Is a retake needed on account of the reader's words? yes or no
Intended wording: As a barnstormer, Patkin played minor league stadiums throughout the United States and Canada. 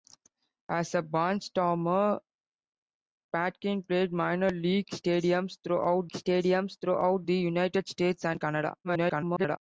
yes